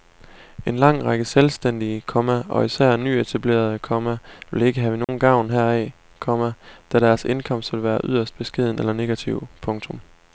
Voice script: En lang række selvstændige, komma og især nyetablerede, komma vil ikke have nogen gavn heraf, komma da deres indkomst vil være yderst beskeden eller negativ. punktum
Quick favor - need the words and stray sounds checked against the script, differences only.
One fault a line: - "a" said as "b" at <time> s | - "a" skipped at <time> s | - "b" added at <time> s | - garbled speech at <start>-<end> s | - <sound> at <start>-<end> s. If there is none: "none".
- dropout at 5.0-5.1 s